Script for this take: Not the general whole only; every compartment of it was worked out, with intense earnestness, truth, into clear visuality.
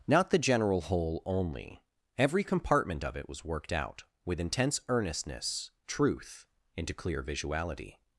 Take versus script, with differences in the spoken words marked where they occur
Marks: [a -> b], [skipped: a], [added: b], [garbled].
Not the general whole only; every compartment of it was worked out, with intense earnestness, truth, into clear visuality.